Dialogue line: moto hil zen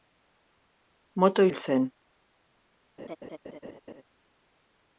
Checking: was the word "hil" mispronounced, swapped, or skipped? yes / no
no